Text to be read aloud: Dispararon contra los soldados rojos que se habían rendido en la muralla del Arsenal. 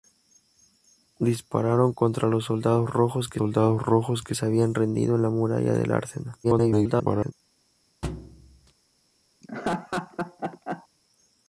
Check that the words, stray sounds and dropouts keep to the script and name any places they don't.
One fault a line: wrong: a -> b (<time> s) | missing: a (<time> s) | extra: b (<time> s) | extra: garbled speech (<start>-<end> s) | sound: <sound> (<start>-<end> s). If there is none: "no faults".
extra: soldados rojos que (3.4 s)
extra: garbled speech (6.4-7.3 s)
sound: thud (8.0-8.7 s)
sound: laugh (9.4-10.9 s)